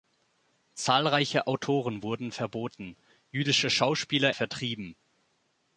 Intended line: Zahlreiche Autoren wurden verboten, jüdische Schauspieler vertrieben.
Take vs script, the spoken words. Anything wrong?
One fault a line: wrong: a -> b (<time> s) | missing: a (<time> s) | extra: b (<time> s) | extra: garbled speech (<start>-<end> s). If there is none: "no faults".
no faults